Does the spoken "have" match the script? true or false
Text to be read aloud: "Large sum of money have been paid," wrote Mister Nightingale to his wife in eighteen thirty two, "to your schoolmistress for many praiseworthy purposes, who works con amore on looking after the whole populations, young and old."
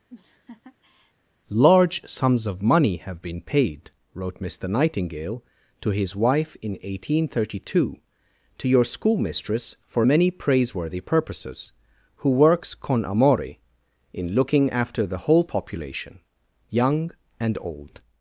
true